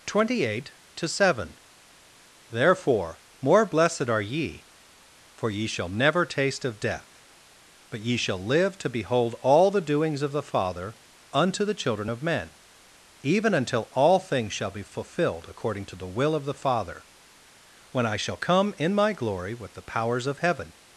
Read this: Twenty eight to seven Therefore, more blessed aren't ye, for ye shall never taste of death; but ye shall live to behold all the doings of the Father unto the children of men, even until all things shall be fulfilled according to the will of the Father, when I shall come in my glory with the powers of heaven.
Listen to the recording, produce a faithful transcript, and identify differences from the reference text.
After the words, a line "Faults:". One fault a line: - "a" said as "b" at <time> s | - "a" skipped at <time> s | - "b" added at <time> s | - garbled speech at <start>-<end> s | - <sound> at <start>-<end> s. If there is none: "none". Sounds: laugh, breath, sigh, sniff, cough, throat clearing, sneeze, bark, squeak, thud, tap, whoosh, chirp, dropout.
Twenty eight to seven Therefore, more blessed are ye, for ye shall never taste of death; but ye shall live to behold all the doings of the Father unto the children of men, even until all things shall be fulfilled according to the will of the Father, when I shall come in my glory with the powers of heaven.
Faults:
- "aren't" said as "are" at 4.1 s